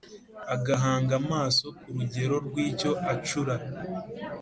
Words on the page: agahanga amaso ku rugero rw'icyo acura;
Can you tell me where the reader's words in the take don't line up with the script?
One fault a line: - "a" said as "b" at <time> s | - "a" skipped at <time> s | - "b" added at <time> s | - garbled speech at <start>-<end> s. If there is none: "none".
none